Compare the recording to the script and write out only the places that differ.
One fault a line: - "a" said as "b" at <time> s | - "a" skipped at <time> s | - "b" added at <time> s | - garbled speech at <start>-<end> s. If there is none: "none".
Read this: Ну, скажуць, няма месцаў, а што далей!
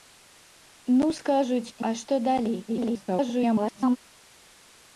- "няма месцаў" skipped at 1.8 s
- garbled speech at 2.7-4.0 s